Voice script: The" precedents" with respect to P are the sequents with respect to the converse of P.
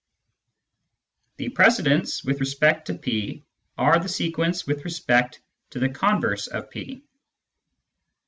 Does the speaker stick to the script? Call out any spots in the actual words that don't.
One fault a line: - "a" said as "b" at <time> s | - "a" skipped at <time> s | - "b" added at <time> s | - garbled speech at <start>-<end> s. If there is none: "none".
none